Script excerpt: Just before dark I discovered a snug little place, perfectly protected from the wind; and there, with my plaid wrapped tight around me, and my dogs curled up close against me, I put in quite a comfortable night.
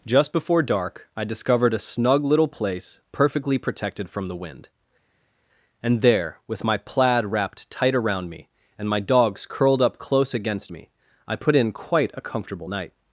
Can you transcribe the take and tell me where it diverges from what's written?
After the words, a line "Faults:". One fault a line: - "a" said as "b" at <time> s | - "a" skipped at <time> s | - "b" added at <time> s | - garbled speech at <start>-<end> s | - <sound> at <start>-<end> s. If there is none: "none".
Just before dark I discovered a snug little place, perfectly protected from the wind; and there, with my plaid wrapped tight around me, and my dogs curled up close against me, I put in quite a comfortable night.
Faults:
none